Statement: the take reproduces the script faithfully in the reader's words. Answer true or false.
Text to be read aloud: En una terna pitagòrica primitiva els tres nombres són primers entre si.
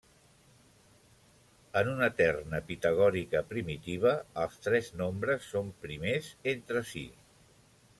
true